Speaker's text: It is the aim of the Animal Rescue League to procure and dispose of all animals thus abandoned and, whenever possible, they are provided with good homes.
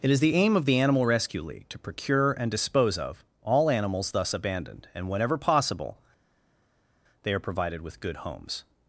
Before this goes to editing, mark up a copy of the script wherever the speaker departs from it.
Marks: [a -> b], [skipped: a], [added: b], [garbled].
It is the aim of the Animal Rescue League to procure and dispose of all animals thus abandoned and, whenever possible, they are provided with good homes.